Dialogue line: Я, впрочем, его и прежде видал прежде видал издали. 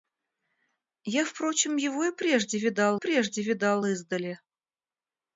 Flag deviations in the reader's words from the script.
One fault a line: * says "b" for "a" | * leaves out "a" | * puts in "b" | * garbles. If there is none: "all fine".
all fine